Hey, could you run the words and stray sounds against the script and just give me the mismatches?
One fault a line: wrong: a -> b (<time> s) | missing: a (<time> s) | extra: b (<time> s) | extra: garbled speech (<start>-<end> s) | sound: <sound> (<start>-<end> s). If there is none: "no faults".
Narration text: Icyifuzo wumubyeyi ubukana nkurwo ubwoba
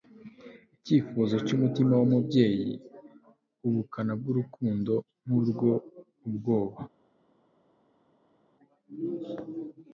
extra: cyumutima (1.4 s)
extra: bwurukundo (4.2 s)